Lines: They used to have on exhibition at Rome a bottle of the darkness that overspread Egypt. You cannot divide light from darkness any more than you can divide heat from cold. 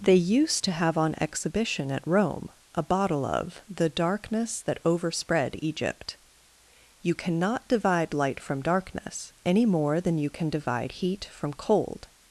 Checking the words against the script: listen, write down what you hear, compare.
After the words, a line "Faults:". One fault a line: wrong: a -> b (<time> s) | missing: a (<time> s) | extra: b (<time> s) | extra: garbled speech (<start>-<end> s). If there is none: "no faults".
They used to have on exhibition at Rome a bottle of the darkness that overspread Egypt. You cannot divide light from darkness any more than you can divide heat from cold.
Faults:
no faults